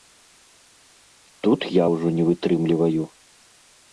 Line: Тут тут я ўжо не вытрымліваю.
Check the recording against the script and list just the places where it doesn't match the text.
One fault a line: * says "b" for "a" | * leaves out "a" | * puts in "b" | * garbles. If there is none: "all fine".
* leaves out "тут"